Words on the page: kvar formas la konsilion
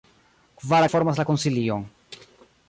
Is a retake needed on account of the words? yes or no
no